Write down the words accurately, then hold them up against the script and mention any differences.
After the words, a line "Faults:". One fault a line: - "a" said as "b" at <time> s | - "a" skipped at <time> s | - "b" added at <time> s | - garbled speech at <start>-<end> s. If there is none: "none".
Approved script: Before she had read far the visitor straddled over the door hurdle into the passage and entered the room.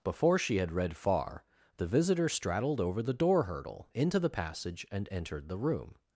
Before she had read far the visitor straddled over the door hurdle into the passage and entered the room.
Faults:
none